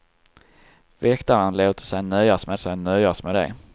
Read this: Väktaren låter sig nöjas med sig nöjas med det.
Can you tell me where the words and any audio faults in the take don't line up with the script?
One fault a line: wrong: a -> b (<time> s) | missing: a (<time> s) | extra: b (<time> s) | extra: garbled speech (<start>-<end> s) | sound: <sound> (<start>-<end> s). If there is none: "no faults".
no faults